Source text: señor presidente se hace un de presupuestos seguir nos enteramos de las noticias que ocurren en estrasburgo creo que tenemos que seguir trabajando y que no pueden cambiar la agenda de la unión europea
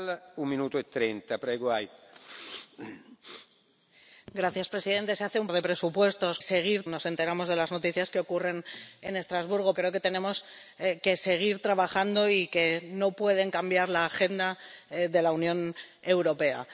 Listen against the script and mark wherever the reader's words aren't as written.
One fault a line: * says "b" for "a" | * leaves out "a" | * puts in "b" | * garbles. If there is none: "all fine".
all fine